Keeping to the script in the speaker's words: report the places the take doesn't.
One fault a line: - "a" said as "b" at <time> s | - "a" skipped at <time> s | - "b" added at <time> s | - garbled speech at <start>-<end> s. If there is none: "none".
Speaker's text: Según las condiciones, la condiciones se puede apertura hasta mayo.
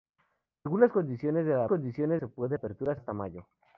none